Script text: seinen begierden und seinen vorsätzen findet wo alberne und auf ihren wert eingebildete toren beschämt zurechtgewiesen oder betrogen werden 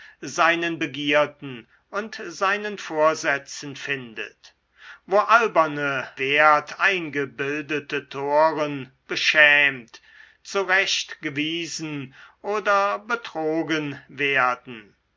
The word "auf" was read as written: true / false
false